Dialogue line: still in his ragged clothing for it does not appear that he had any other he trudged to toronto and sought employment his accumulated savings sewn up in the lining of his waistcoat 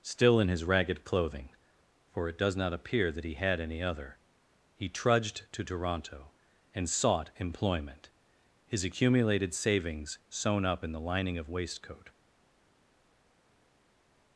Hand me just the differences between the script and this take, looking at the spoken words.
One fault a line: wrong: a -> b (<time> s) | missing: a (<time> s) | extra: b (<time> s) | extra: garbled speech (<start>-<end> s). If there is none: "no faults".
missing: his (11.5 s)